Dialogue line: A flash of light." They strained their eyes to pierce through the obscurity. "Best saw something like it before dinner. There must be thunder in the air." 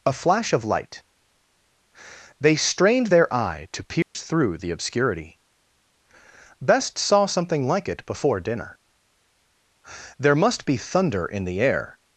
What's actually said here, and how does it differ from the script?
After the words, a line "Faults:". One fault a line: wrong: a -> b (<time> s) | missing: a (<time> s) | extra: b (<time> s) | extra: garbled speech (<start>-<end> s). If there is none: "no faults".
A flash of light." They strained their eye to pierce through the obscurity. "Best saw something like it before dinner. There must be thunder in the air."
Faults:
wrong: eyes -> eye (3.3 s)